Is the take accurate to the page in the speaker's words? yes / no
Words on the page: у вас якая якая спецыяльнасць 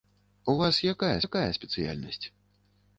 yes